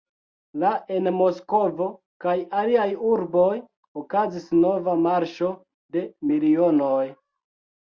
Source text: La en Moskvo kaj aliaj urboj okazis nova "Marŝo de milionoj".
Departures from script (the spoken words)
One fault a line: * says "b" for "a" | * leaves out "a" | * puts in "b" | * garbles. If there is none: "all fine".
all fine